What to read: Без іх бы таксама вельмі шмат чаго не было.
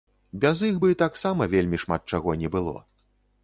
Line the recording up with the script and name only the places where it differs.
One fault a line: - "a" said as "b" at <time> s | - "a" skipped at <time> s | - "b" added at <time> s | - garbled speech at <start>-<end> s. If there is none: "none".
none